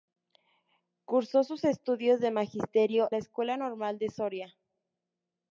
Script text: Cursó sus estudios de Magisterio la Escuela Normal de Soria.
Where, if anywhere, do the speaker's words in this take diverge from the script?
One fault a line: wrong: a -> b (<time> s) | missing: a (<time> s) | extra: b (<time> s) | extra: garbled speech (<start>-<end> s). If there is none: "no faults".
no faults